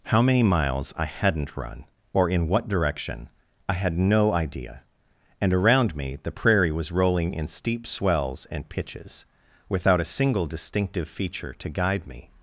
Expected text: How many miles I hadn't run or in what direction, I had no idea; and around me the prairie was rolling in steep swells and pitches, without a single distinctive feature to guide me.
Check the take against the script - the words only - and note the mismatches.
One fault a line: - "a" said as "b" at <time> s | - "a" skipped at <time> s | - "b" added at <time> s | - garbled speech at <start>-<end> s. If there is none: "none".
none